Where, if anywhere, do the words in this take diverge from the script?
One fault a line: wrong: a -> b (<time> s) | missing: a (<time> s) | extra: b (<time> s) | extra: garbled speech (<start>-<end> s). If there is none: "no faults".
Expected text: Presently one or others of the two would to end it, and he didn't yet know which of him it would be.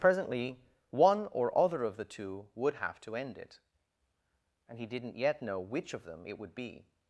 wrong: others -> other (1.6 s)
extra: have (2.8 s)
wrong: him -> them (6.0 s)